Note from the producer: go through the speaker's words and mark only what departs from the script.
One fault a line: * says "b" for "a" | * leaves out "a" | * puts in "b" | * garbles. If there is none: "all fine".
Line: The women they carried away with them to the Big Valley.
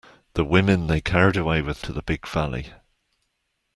* leaves out "them"